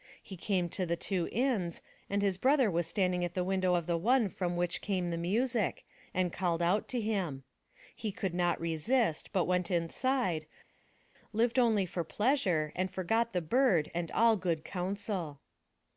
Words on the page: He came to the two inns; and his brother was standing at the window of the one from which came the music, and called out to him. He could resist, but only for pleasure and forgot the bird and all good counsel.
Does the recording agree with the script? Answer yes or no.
no